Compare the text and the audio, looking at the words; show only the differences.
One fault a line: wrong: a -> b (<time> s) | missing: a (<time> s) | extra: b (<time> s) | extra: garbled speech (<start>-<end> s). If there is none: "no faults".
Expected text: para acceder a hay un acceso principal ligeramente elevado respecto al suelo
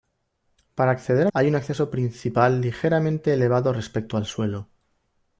no faults